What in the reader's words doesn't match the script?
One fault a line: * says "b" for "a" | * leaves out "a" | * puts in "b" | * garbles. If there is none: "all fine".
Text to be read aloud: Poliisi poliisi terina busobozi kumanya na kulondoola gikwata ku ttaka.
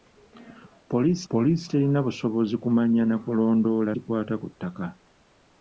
all fine